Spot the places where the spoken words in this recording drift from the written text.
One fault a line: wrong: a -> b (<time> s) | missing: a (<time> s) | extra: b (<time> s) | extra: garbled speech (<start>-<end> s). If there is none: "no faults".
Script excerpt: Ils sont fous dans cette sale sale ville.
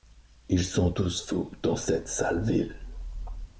extra: tous (0.9 s)
missing: sale (2.4 s)